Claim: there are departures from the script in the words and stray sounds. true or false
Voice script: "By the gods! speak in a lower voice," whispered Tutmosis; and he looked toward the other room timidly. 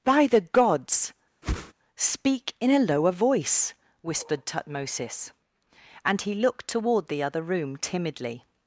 true